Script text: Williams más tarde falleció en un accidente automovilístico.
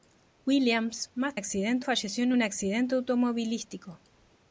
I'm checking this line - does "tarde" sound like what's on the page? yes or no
no